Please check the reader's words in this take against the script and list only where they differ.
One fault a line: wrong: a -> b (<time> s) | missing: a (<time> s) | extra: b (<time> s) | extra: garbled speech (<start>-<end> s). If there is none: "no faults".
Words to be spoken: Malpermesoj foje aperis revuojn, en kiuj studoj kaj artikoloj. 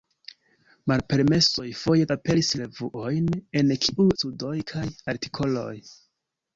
no faults